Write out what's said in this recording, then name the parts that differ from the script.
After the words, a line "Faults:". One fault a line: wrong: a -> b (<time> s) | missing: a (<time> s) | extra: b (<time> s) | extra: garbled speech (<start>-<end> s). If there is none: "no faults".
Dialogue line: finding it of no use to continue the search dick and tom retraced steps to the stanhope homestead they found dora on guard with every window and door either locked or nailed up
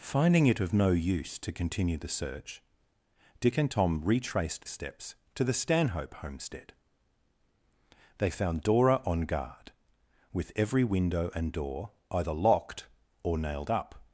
finding it of no use to continue the search dick and tom retraced steps to the stanhope homestead they found dora on guard with every window and door either locked or nailed up
Faults:
no faults